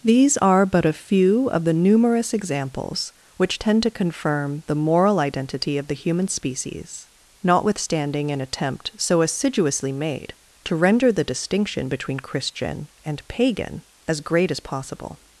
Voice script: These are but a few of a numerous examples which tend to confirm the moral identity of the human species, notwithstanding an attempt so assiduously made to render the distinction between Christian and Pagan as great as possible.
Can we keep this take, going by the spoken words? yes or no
no